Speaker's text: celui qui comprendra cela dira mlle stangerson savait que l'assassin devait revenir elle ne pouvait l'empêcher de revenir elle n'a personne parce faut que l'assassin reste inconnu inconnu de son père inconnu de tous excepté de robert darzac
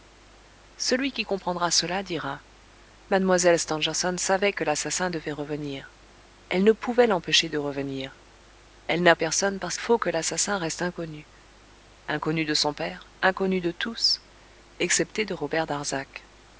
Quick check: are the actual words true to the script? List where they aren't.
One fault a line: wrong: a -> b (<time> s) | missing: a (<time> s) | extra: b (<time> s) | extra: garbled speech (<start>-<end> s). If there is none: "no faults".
no faults